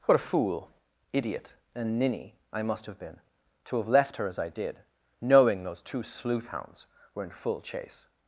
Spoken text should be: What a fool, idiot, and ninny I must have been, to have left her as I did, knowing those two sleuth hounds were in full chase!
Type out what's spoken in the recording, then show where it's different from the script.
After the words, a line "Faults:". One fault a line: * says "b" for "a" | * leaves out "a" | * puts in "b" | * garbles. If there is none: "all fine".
What a fool, idiot, and ninny I must have been, to have left her as I did, knowing those two sleuth hounds were in full chase!
Faults:
all fine